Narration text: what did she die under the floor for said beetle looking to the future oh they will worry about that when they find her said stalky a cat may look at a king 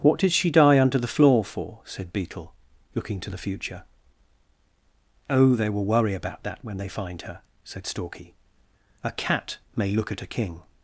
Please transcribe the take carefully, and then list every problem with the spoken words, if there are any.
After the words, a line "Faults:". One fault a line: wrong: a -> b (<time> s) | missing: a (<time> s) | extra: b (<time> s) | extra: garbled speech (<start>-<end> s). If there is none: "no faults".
what did she die under the floor for said beetle looking to the future oh they will worry about that when they find her said stalky a cat may look at a king
Faults:
no faults